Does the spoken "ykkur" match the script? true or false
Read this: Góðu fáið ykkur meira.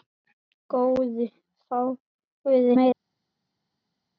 false